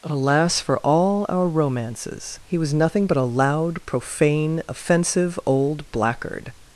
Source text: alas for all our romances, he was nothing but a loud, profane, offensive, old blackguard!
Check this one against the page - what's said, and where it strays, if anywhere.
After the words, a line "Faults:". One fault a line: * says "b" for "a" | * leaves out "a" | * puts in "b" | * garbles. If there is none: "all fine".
alas for all our romances, he was nothing but a loud, profane, offensive, old blackguard!
Faults:
all fine